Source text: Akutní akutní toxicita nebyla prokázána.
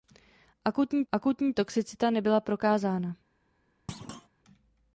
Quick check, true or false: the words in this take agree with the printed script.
true